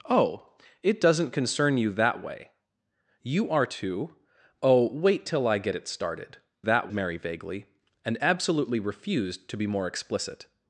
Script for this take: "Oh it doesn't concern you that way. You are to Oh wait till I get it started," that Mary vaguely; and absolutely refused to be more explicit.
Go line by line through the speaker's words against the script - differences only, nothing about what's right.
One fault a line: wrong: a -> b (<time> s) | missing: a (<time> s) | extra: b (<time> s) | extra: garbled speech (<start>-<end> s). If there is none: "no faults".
no faults